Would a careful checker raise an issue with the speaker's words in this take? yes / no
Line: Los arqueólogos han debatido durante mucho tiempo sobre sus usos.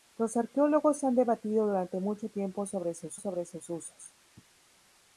yes